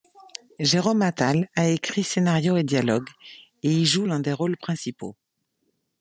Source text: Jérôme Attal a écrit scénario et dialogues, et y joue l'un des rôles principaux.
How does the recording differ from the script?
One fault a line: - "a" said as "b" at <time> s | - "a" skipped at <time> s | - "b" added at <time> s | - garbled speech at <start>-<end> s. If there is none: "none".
none